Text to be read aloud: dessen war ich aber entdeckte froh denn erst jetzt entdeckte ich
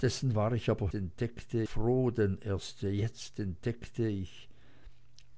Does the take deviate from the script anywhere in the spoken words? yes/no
no